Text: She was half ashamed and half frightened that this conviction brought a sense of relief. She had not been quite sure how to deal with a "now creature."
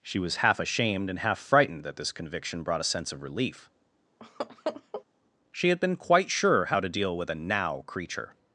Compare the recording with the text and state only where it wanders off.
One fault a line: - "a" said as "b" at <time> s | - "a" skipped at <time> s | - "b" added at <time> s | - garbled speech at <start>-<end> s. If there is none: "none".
- "not" skipped at 5.8 s